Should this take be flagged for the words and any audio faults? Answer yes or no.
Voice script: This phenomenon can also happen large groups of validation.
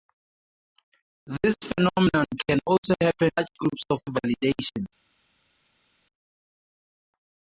no